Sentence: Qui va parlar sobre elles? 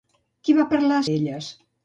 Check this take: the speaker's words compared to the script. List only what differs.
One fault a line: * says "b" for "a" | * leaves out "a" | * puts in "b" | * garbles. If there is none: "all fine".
* leaves out "sobre"